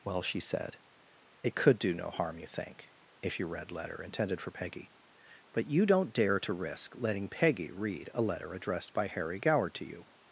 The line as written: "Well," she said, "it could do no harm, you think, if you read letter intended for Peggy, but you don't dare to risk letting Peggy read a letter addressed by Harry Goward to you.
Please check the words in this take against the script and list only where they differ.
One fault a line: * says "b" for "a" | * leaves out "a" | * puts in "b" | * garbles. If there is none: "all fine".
all fine